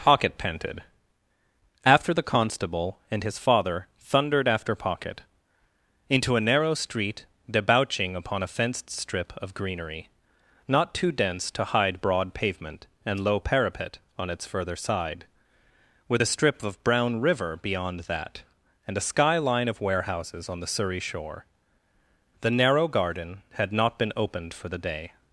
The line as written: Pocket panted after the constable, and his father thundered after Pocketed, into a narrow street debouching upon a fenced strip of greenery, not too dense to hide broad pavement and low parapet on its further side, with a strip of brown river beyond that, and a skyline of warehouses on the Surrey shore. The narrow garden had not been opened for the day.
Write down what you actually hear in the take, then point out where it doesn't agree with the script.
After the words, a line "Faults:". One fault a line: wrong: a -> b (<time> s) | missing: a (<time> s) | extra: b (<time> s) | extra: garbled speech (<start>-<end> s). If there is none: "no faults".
Pocket panted after the constable, and his father thundered after Pocket, into a narrow street debouching upon a fenced strip of greenery, not too dense to hide broad pavement and low parapet on its further side, with a strip of brown river beyond that, and a skyline of warehouses on the Surrey shore. The narrow garden had not been opened for the day.
Faults:
wrong: Pocketed -> Pocket (4.7 s)